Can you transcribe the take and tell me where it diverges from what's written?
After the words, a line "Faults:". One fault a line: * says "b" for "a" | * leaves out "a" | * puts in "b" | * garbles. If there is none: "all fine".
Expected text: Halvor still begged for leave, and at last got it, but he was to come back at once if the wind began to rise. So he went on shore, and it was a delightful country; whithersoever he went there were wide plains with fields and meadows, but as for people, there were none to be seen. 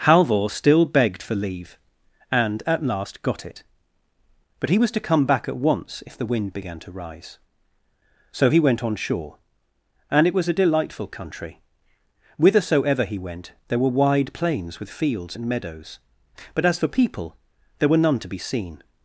Halvor still begged for leave, and at last got it, but he was to come back at once if the wind began to rise. So he went on shore, and it was a delightful country; whithersoever he went there were wide plains with fields and meadows, but as for people, there were none to be seen.
Faults:
all fine